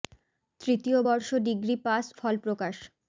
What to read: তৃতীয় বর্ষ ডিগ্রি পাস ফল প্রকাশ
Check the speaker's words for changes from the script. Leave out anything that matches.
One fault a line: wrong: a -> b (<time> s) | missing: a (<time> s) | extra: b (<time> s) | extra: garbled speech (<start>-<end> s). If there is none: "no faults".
no faults